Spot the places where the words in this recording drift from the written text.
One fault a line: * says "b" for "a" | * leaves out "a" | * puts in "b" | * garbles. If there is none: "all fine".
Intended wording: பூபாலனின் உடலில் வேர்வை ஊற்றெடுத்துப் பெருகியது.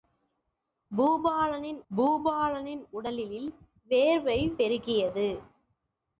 * puts in "பூபாலனின்"
* leaves out "ஊற்றெடுத்துப்"